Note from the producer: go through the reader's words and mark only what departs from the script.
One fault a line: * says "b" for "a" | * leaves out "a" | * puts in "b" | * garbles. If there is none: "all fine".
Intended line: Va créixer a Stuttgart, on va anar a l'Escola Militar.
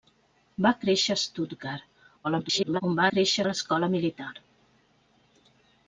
* garbles
* says "créixer" for "anar"